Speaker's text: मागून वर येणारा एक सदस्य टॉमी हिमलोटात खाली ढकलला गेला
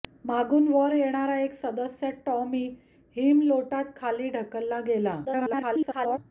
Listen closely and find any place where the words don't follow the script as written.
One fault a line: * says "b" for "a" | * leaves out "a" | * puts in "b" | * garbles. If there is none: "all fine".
* garbles